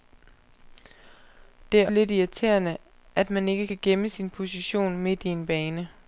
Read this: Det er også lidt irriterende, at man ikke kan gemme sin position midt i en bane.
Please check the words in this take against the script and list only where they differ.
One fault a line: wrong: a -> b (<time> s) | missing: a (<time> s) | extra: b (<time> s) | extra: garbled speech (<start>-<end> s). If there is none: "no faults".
missing: også (1.9 s)